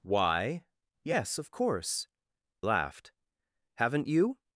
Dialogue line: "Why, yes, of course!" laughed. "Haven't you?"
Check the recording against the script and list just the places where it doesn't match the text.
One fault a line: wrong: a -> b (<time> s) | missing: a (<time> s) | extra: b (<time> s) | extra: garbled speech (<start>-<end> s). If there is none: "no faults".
no faults